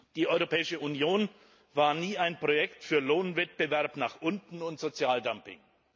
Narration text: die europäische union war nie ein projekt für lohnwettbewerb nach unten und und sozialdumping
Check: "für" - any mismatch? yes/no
no